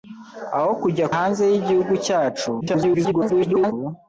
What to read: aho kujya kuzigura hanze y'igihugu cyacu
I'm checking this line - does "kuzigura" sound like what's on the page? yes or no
no